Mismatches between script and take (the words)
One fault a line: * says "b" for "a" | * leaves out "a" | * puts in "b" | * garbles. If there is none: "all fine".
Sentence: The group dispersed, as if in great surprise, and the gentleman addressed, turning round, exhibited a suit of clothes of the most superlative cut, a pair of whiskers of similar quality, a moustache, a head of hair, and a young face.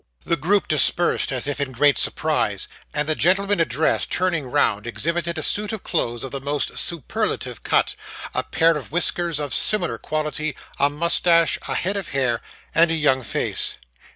all fine